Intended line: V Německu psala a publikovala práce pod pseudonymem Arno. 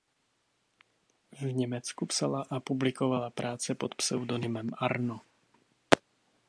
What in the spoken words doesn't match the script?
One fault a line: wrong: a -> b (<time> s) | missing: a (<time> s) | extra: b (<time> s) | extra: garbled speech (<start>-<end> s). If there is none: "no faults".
no faults